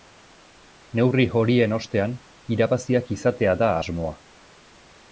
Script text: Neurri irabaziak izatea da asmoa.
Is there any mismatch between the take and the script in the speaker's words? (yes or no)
yes